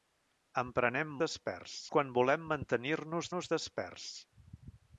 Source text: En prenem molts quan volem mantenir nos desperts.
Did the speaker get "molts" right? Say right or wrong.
wrong